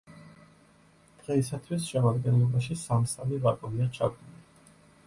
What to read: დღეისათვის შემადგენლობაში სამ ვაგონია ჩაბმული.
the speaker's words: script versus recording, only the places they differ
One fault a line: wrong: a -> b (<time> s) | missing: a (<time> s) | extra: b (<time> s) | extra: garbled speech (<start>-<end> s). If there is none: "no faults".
extra: სამი (3.1 s)